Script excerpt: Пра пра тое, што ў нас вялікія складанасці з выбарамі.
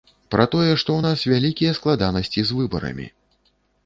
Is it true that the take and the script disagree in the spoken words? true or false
true